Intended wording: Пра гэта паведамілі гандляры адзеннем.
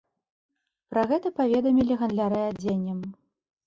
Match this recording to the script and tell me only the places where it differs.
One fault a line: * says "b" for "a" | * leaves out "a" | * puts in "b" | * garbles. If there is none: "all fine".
all fine